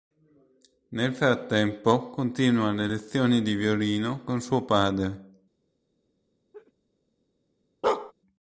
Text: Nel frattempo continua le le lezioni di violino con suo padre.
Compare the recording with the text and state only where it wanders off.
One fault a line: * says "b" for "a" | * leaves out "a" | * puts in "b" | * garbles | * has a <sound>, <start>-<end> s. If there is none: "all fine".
* leaves out "le"
* has a laugh, 6.5-6.7 s
* has a bark, 7.8-8.1 s